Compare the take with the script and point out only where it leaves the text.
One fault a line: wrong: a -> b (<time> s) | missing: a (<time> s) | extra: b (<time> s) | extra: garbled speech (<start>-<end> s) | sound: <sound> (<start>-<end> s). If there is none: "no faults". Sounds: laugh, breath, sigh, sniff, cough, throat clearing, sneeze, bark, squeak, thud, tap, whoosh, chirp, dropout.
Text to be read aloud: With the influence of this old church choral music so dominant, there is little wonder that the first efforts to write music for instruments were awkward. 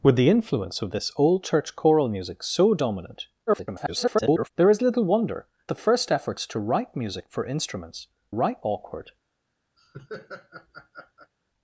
extra: garbled speech (3.5-4.5 s)
missing: that (5.5 s)
wrong: were -> write (8.3 s)
sound: laugh (9.8-11.3 s)